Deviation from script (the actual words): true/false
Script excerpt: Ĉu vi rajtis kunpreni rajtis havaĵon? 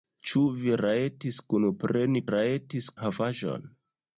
false